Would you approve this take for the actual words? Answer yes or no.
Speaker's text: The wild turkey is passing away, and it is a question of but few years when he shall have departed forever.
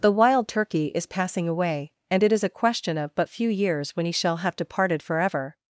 yes